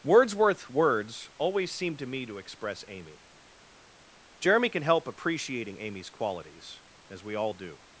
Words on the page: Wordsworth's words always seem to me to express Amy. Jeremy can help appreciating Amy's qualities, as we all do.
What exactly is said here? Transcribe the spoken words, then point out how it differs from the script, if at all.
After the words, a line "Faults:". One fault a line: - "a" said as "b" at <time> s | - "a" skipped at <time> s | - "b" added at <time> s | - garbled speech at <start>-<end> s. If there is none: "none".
Wordsworth's words always seem to me to express Amy. Jeremy can help appreciating Amy's qualities, as we all do.
Faults:
none